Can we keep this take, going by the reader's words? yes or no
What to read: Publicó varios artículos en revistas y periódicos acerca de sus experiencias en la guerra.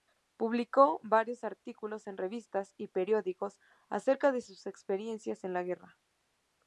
yes